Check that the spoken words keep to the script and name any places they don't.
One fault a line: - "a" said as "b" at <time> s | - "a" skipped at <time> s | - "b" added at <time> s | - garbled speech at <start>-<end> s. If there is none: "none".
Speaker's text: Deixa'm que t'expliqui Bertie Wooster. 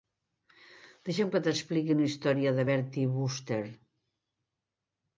- "una història de" added at 2.0 s